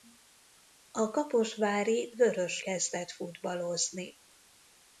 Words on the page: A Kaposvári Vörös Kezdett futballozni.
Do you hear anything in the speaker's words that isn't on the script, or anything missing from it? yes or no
no